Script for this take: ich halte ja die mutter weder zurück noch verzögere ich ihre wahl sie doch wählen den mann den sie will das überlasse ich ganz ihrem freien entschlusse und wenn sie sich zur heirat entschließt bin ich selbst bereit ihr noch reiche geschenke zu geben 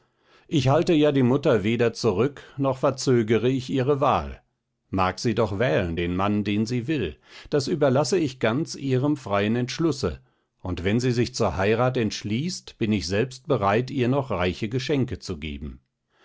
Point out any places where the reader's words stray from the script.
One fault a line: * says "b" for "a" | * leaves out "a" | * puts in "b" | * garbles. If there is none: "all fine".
* puts in "mag"